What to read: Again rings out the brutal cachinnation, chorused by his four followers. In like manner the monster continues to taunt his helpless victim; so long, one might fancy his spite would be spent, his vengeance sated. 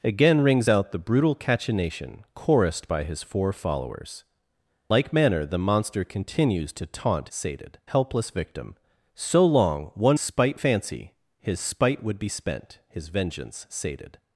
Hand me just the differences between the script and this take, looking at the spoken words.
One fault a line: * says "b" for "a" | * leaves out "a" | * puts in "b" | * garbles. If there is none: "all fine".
* leaves out "In"
* says "sated" for "his"
* says "spite" for "might"